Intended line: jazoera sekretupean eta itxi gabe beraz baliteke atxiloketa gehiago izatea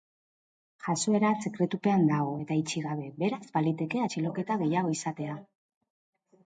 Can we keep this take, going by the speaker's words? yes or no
no